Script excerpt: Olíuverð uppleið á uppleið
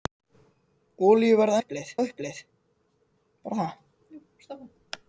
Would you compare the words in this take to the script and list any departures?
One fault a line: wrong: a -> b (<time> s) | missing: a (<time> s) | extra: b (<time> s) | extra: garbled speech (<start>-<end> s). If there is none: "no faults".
no faults